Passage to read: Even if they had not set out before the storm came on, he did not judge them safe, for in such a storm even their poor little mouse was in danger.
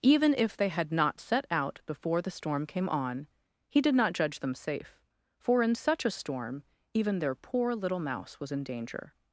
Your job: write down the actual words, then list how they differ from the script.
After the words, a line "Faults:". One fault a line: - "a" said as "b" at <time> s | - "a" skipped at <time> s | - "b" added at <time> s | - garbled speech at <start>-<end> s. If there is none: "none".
Even if they had not set out before the storm came on, he did not judge them safe, for in such a storm even their poor little mouse was in danger.
Faults:
none